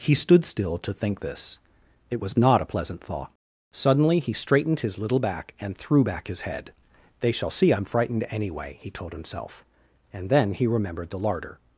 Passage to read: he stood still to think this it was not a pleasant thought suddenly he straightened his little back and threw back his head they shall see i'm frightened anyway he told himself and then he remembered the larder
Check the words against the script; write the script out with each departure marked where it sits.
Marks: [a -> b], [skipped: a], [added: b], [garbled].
he stood still to think this it was not a pleasant thought suddenly he straightened his little back and threw back his head they shall see i'm frightened anyway he told himself and then he remembered the larder